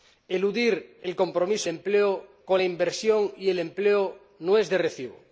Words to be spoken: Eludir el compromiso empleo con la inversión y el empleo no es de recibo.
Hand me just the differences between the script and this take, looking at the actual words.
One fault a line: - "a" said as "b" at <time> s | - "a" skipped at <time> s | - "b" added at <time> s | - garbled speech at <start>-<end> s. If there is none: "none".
none